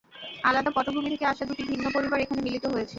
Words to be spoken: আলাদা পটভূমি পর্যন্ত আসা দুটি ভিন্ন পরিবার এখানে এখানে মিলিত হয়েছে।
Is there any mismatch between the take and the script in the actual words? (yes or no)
yes